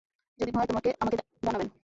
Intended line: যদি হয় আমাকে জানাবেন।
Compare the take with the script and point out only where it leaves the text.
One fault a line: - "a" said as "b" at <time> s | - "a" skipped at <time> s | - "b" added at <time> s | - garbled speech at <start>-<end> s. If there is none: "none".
none